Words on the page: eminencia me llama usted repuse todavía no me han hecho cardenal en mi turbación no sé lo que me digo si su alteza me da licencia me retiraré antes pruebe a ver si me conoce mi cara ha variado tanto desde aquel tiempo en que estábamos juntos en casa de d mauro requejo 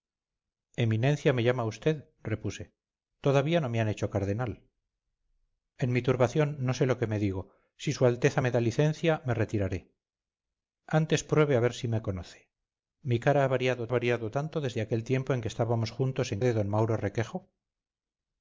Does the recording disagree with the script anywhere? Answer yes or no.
yes